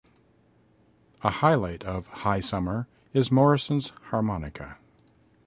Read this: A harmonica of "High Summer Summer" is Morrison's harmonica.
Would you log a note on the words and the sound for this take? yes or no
yes